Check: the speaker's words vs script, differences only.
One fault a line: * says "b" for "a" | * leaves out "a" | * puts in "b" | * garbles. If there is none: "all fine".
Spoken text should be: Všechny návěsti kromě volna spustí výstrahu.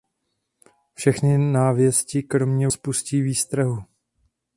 * leaves out "volna"